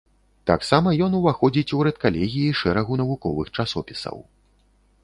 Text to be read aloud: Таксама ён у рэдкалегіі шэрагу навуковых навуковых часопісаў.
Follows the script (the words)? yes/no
no